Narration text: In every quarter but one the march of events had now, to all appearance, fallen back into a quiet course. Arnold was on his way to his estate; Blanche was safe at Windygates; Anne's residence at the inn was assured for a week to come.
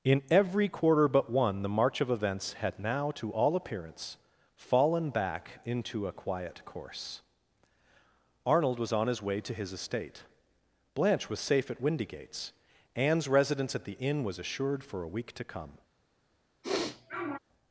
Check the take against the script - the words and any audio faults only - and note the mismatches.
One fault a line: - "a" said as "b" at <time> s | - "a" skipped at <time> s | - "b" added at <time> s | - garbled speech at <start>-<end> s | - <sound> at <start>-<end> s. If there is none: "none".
- sniff at 16.6-17.4 s